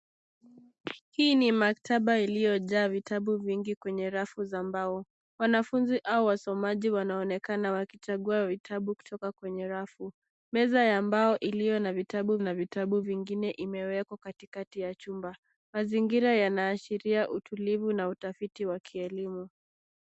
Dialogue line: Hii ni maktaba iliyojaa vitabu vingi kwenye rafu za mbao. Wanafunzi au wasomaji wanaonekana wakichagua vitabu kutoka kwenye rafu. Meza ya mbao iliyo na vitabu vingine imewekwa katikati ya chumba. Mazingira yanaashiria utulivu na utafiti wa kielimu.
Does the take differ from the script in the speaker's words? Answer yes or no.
yes